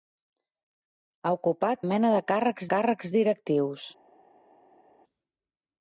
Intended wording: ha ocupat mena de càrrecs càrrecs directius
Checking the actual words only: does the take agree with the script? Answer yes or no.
yes